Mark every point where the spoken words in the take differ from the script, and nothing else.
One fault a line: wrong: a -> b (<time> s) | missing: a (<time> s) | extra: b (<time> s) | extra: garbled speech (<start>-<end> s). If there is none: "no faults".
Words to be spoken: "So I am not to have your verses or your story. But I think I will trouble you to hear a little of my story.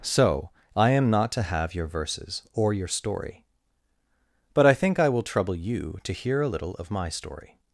no faults